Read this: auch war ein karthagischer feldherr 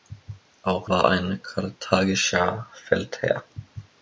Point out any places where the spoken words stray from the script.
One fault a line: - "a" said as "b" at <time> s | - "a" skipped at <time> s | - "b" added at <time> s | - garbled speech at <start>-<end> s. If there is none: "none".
none